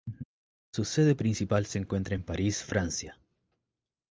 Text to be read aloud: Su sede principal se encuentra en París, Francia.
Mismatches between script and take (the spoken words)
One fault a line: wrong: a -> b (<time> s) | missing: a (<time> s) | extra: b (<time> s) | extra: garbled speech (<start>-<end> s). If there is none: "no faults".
no faults